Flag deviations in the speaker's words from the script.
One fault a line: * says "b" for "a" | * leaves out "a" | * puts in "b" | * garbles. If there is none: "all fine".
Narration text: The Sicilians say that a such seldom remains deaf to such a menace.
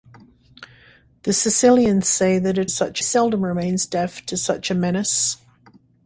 all fine